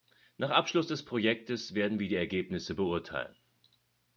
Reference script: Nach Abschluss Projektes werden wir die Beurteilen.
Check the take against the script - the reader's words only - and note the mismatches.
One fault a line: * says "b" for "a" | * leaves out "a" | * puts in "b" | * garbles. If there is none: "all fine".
* puts in "des"
* puts in "Ergebnisse"